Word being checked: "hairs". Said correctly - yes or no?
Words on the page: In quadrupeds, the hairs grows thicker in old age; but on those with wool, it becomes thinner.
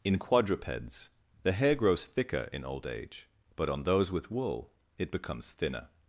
no